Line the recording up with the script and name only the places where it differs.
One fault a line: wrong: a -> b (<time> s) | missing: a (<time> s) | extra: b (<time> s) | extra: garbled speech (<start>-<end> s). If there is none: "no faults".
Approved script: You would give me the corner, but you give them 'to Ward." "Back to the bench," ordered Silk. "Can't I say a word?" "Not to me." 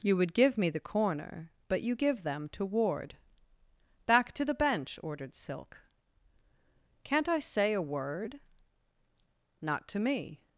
no faults